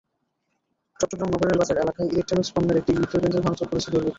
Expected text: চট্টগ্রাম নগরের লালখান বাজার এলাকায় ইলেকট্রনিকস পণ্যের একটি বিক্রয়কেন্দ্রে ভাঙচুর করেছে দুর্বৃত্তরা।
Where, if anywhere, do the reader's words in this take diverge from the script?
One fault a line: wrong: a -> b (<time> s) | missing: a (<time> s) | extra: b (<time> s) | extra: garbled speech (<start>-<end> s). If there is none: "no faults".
missing: লালখান (1.6 s)